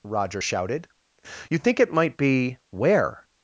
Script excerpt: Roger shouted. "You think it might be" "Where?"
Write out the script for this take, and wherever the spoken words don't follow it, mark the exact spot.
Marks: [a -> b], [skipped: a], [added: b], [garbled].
Roger shouted. "You think it might be" "Where?"